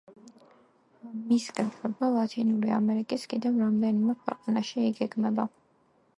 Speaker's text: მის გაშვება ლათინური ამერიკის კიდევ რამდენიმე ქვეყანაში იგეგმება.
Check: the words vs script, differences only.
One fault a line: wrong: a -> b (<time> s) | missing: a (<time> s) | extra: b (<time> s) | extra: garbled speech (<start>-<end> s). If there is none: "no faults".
no faults